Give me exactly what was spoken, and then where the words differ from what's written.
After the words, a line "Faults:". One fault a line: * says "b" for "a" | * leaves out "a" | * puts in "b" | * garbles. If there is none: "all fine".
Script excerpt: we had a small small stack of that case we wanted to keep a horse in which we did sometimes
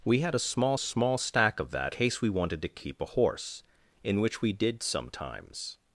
we had a small small stack of that case we wanted to keep a horse in which we did sometimes
Faults:
all fine